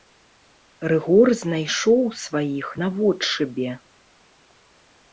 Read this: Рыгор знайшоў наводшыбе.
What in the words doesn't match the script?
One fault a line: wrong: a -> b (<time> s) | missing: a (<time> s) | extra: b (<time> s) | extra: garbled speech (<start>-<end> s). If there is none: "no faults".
extra: сваіх (2.2 s)